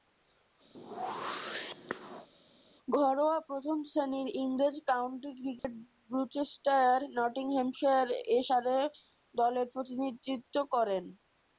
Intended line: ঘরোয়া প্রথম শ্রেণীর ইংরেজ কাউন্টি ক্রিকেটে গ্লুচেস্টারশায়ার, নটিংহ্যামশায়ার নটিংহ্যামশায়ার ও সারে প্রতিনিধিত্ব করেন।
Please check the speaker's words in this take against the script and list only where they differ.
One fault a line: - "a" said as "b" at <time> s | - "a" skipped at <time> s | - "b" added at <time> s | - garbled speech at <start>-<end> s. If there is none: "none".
- "নটিংহ্যামশায়ার" skipped at 8.1 s
- "দলের" added at 9.3 s